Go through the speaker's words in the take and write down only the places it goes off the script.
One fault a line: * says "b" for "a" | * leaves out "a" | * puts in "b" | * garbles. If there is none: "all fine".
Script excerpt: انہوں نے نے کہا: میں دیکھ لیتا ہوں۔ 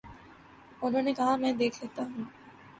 * leaves out "نے"